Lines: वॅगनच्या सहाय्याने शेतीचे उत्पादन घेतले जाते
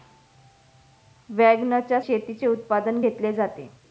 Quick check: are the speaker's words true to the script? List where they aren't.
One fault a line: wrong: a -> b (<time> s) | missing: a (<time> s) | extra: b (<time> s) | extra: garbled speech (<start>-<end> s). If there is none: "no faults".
missing: सहाय्याने (2.0 s)